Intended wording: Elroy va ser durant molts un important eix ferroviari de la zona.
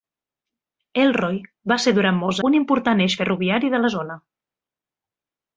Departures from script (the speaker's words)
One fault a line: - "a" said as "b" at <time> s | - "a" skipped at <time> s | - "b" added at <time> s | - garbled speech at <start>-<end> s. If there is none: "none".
none